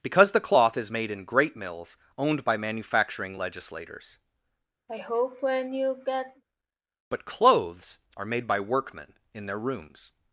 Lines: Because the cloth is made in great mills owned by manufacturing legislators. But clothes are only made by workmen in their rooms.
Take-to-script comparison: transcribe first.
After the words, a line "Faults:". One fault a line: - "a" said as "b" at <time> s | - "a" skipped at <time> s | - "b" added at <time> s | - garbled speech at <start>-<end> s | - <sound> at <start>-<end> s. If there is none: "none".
Because the cloth is made in great mills owned by manufacturing legislators. But clothes are made by workmen in their rooms.
Faults:
- sigh at 4.9-6.4 s
- "only" skipped at 8.2 s